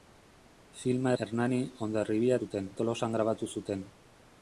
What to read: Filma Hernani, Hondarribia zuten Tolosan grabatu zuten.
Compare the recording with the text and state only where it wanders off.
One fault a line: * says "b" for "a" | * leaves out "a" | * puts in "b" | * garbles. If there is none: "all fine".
all fine